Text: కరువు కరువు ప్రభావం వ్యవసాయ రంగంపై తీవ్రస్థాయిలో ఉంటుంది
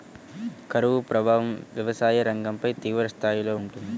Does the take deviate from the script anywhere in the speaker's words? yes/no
yes